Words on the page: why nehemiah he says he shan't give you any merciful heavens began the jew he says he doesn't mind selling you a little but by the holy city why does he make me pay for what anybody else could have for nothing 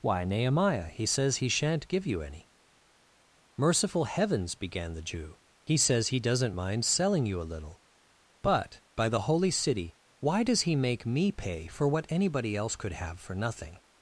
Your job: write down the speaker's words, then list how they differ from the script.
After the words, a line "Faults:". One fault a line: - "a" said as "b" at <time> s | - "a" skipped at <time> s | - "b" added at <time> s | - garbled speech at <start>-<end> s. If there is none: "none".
why nehemiah he says he shan't give you any merciful heavens began the jew he says he doesn't mind selling you a little but by the holy city why does he make me pay for what anybody else could have for nothing
Faults:
none